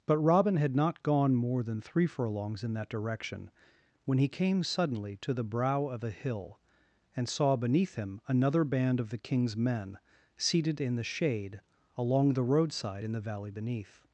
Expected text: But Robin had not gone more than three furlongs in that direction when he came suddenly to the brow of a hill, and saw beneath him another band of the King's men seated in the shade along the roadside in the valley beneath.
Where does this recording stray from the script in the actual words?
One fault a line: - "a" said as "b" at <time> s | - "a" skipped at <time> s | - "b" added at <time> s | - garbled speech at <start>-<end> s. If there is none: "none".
none